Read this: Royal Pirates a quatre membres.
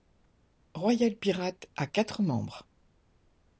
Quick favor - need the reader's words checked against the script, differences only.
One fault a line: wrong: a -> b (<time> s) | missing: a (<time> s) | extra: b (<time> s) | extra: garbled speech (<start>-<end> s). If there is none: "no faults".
no faults